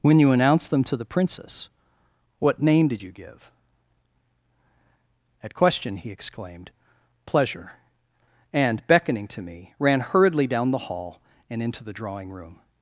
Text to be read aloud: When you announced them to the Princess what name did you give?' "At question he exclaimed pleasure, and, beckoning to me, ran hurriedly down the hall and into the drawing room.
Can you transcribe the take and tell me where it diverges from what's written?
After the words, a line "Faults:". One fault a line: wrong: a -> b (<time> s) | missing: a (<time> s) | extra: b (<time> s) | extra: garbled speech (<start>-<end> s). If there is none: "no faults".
When you announced them to the Princess what name did you give?' "At question he exclaimed pleasure, and, beckoning to me, ran hurriedly down the hall and into the drawing room.
Faults:
no faults